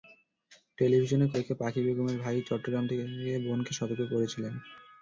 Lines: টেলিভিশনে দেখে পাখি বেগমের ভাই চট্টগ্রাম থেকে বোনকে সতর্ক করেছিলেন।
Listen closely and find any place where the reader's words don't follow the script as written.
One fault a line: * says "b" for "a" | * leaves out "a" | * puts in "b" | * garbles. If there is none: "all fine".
all fine